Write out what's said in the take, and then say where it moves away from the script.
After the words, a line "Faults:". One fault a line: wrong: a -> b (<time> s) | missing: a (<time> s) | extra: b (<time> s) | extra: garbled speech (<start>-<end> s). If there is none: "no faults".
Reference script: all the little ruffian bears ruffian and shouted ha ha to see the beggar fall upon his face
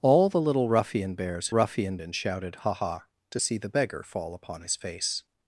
all the little ruffian bears ruffian and shouted ha ha to see the beggar fall upon his face
Faults:
no faults